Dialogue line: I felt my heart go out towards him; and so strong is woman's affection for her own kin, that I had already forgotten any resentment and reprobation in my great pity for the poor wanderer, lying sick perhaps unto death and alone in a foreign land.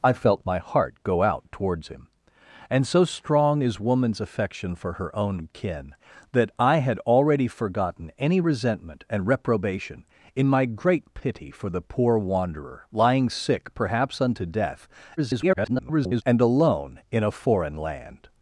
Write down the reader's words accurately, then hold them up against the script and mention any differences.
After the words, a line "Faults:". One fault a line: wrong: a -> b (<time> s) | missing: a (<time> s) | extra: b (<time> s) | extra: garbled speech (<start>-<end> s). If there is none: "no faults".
I felt my heart go out towards him; and so strong is woman's affection for her own kin, that I had already forgotten any resentment and reprobation in my great pity for the poor wanderer, lying sick perhaps unto death [garbled] and alone in a foreign land.
Faults:
extra: garbled speech (15.2-16.2 s)